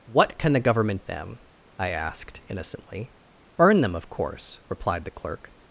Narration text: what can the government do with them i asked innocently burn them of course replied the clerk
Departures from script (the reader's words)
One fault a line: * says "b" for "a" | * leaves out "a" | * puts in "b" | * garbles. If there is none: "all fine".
* leaves out "do with"